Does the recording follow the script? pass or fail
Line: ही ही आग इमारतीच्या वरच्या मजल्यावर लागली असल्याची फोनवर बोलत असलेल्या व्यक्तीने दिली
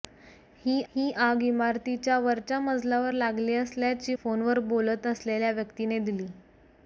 pass